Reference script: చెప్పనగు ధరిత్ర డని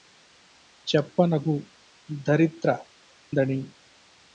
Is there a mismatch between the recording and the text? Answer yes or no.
no